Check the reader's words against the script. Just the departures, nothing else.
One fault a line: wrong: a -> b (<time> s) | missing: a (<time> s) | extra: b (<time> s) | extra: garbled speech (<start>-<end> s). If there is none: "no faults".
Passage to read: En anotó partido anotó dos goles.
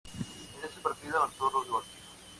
wrong: anotó -> ese (0.6 s)